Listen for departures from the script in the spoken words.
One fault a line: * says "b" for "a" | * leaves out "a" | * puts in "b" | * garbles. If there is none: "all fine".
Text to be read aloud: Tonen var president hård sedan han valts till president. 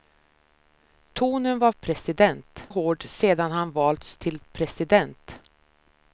all fine